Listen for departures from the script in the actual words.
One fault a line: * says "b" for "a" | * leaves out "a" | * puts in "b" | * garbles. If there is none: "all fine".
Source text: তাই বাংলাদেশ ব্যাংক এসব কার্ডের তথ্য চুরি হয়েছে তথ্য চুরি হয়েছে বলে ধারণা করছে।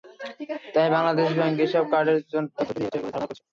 * leaves out "তথ্য চুরি হয়েছে"